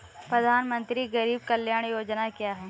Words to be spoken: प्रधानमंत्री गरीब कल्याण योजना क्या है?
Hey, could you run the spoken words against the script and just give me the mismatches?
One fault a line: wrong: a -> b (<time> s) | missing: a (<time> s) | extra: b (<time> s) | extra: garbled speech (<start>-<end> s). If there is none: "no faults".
no faults